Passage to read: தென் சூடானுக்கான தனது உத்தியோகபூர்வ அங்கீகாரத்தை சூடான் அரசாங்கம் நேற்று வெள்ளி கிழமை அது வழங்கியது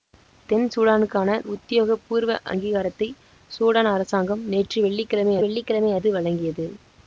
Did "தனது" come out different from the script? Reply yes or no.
yes